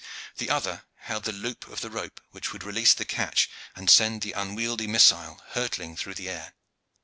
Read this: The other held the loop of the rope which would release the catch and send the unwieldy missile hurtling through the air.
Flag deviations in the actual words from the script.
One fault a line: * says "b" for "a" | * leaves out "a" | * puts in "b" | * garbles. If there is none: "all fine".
all fine